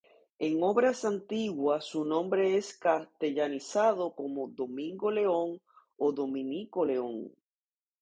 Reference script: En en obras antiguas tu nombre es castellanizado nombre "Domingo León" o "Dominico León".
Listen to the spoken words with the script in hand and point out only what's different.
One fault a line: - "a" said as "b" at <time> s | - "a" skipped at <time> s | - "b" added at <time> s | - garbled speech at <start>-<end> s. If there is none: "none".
- "en" skipped at 0.6 s
- "tu" said as "su" at 1.9 s
- "nombre" said as "como" at 4.2 s